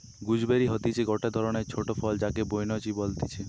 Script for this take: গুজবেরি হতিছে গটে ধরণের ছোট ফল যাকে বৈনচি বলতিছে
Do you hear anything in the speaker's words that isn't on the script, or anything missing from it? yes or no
no